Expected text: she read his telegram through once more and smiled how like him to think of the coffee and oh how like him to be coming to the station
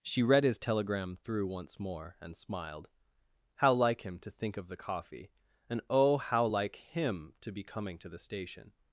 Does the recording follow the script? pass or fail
pass